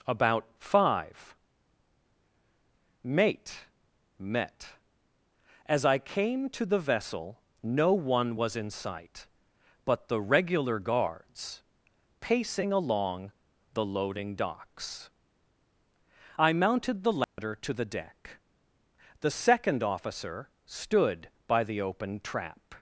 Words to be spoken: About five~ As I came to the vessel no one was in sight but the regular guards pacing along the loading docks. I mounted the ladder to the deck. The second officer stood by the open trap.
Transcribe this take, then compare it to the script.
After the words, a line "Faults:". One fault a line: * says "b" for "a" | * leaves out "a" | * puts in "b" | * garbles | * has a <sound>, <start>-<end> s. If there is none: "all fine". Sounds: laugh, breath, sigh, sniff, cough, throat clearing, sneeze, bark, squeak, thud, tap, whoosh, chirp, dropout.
About five~ mate met As I came to the vessel no one was in sight but the regular guards pacing along the loading docks. I mounted the ladder to the deck. The second officer stood by the open trap.
Faults:
* puts in "mate met"
* has a dropout, 17.2-17.4 s